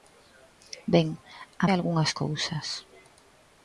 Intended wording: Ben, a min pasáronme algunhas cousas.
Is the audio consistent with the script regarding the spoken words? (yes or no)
no